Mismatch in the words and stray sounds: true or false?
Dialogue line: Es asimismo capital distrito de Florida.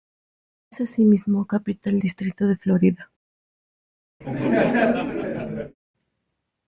true